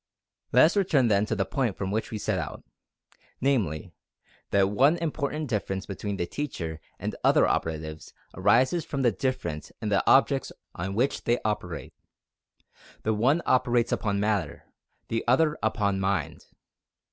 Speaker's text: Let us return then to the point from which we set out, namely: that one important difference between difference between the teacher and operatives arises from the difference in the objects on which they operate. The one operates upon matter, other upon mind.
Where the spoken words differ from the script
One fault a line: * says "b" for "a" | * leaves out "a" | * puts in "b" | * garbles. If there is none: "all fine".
* leaves out "difference between"
* puts in "other"
* puts in "the"